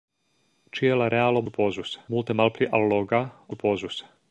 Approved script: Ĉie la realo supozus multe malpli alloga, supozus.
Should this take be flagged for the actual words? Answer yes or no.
no